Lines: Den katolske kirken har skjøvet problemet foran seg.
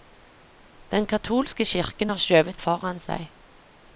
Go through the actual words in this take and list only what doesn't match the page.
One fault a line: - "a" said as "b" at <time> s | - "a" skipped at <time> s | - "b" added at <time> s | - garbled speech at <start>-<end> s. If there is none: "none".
- "problemet" skipped at 2.6 s